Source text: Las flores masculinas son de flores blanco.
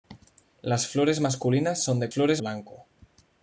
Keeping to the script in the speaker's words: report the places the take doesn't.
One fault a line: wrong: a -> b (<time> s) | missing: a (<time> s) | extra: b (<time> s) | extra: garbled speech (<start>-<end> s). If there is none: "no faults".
no faults